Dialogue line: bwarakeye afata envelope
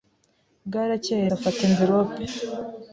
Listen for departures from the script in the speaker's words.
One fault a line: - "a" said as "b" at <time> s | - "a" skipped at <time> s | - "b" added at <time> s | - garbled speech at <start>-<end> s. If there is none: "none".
none